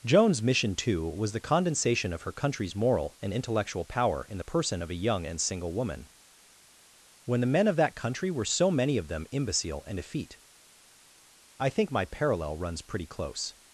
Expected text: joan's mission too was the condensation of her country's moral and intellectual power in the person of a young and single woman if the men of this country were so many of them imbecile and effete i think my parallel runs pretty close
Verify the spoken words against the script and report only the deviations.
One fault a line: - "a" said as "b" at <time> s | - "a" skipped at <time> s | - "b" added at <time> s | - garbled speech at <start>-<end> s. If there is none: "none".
- "if" said as "when" at 7.3 s
- "this" said as "that" at 7.8 s